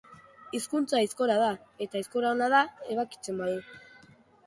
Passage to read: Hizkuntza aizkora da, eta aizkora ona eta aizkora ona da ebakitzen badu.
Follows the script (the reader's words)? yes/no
no